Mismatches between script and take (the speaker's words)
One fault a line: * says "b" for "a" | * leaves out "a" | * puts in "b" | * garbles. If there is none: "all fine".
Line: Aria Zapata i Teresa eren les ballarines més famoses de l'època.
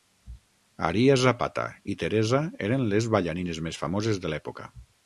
all fine